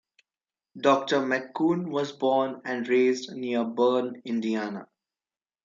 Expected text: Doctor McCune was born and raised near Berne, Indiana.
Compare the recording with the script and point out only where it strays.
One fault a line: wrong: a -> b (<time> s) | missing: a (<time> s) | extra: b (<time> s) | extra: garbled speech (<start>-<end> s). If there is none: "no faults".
no faults